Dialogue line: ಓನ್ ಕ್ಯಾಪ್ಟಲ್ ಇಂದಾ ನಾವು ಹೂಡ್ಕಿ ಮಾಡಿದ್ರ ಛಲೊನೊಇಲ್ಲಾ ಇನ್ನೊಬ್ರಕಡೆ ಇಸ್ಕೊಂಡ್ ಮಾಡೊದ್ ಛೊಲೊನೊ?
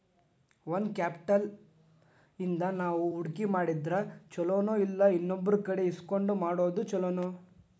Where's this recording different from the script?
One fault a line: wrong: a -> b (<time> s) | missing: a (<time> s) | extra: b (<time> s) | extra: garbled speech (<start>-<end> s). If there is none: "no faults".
no faults